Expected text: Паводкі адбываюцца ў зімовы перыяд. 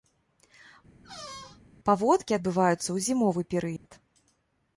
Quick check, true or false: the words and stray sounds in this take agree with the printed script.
false